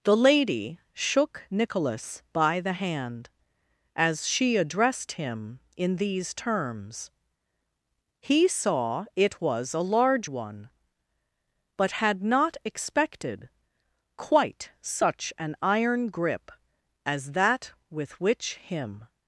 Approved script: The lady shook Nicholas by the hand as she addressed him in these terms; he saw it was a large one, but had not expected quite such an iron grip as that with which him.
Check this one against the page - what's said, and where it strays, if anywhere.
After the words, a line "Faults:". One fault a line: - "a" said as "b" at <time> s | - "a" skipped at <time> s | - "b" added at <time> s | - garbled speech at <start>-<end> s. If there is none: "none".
The lady shook Nicholas by the hand as she addressed him in these terms; he saw it was a large one, but had not expected quite such an iron grip as that with which him.
Faults:
none